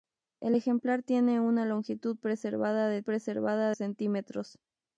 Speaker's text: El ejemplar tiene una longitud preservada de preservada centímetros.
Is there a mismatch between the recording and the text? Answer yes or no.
no